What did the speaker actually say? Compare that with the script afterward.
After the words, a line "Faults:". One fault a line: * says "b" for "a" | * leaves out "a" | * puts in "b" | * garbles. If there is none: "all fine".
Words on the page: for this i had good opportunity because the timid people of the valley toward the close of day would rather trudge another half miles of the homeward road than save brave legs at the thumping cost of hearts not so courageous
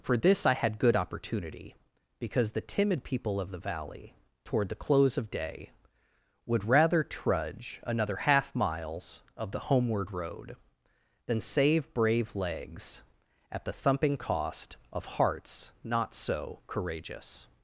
for this i had good opportunity because the timid people of the valley toward the close of day would rather trudge another half miles of the homeward road than save brave legs at the thumping cost of hearts not so courageous
Faults:
all fine